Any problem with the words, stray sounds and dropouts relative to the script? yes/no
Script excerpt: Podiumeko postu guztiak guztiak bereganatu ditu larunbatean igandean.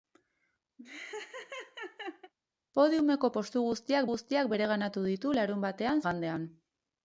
yes